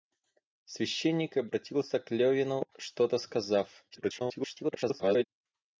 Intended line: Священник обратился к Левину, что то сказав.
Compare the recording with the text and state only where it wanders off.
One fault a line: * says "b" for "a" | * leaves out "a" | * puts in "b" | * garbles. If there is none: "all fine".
* garbles